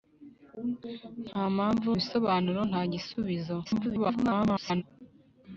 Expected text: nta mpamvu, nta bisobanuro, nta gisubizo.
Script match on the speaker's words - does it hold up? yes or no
no